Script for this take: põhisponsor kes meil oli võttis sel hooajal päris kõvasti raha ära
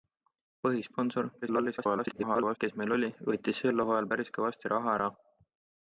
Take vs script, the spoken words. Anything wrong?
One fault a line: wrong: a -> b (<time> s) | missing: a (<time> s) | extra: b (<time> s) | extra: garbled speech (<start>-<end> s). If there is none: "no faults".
extra: garbled speech (1.4-2.6 s)